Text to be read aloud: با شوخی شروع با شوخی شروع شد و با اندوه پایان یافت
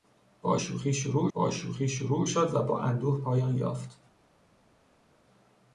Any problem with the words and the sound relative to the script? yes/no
no